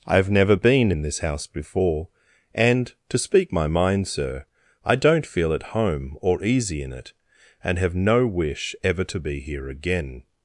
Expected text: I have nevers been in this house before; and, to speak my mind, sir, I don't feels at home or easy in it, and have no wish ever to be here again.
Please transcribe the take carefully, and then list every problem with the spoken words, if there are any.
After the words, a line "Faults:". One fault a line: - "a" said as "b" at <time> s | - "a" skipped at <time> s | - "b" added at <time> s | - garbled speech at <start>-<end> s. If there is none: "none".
I have never been in this house before; and, to speak my mind, sir, I don't feel at home or easy in it, and have no wish ever to be here again.
Faults:
- "nevers" said as "never" at 0.3 s
- "feels" said as "feel" at 5.3 s